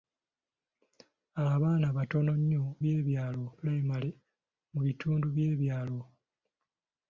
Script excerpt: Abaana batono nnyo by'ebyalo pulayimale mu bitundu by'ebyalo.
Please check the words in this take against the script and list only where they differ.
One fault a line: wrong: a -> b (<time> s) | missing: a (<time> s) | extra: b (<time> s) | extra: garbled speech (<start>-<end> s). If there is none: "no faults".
no faults